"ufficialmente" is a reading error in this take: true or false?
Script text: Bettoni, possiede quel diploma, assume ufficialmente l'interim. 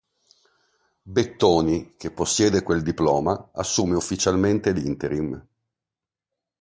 false